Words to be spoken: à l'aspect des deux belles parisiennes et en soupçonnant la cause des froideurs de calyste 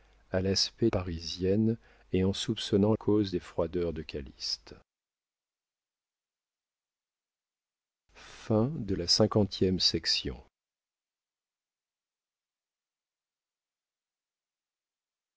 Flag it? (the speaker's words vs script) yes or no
yes